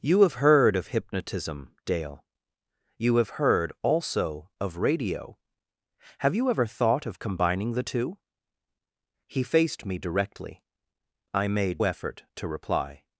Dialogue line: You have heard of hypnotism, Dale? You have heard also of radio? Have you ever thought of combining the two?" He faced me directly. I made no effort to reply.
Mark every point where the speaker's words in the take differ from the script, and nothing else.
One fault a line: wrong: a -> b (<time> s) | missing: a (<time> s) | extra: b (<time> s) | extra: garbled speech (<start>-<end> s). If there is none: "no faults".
missing: no (11.8 s)